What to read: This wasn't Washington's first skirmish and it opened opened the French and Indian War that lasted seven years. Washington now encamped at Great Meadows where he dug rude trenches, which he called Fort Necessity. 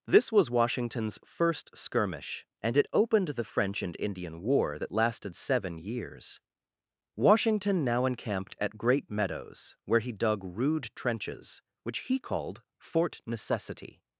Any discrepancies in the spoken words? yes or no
yes